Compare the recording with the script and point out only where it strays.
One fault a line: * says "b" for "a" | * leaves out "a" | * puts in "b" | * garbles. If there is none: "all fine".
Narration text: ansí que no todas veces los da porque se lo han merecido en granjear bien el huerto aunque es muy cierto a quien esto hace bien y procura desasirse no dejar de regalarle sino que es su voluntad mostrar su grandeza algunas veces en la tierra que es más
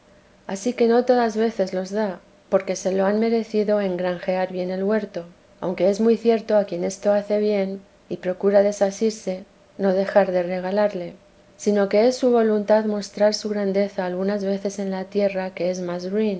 all fine